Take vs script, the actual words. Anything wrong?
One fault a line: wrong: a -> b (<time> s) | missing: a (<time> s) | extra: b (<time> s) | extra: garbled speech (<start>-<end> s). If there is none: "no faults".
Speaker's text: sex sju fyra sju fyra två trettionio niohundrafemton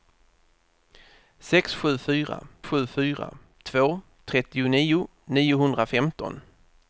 no faults